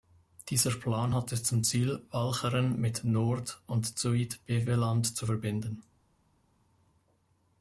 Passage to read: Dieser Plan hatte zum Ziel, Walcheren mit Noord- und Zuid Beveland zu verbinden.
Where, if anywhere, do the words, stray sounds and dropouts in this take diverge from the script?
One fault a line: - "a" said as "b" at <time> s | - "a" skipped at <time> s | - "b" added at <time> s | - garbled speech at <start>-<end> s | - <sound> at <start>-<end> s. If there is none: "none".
none